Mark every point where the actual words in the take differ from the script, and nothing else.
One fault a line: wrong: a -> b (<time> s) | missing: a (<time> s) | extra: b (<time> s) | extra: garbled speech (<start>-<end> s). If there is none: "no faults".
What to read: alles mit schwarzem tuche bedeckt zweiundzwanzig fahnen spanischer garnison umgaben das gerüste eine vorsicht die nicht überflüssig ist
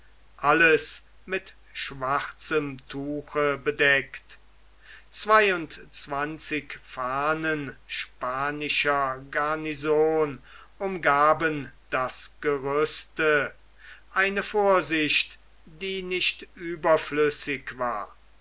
wrong: ist -> war (17.8 s)